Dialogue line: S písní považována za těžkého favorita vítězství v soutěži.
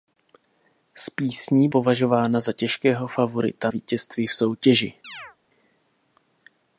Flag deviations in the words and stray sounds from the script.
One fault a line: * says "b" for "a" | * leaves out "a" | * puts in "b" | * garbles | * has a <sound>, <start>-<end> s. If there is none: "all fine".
* has a chirp, 5.0-5.4 s